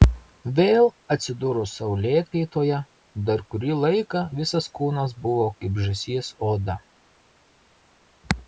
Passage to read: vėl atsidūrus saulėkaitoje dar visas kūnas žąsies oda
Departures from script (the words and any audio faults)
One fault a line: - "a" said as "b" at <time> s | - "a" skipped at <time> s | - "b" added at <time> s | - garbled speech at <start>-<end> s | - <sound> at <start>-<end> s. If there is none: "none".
- "kurį laiką" added at 3.5 s
- "buvo kaip" added at 5.3 s